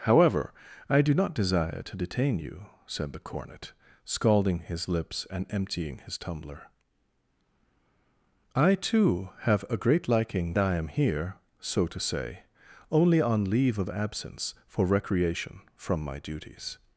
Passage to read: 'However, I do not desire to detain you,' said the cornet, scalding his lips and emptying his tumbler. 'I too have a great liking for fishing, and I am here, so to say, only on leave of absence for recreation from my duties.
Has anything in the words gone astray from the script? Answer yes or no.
yes